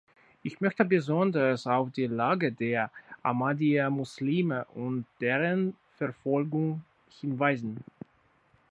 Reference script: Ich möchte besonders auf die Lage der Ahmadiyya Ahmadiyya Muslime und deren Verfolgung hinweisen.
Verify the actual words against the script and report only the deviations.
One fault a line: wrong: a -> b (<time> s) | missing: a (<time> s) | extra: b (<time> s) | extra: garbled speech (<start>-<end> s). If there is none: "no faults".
missing: Ahmadiyya (3.9 s)